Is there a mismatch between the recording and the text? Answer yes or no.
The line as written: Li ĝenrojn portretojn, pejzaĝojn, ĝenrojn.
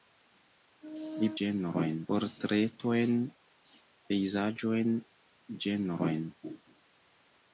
no